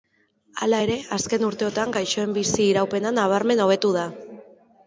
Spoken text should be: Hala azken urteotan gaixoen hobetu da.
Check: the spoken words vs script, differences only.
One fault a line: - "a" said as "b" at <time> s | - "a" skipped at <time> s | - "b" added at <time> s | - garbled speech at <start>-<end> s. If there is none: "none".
- "ere" added at 0.8 s
- "bizi iraupena nabarmen" added at 2.4 s